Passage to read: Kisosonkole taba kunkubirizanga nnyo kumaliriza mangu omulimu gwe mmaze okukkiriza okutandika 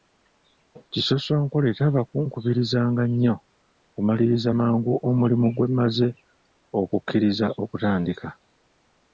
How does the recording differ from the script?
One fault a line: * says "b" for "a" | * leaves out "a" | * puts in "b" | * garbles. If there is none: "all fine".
all fine